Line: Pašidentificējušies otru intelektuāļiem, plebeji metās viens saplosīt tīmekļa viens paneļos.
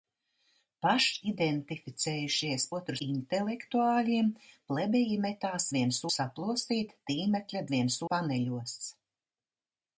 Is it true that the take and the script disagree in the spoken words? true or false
false